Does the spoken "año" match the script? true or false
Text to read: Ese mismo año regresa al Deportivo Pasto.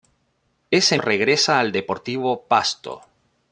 false